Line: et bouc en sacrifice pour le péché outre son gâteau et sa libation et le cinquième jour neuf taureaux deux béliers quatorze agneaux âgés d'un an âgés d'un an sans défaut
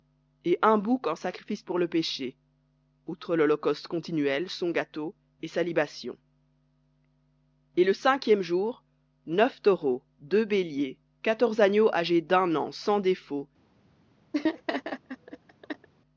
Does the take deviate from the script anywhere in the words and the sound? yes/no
yes